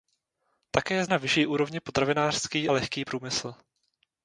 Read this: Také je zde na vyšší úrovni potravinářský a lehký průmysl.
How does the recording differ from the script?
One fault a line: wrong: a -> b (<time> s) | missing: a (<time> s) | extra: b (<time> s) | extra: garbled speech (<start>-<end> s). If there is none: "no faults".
missing: zde (1.1 s)
missing: a (2.7 s)